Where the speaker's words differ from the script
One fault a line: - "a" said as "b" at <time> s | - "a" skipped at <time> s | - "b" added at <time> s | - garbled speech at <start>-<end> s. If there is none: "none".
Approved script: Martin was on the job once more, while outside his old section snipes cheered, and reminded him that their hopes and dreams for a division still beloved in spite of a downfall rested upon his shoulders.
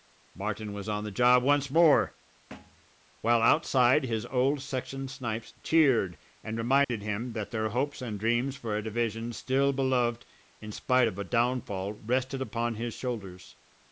none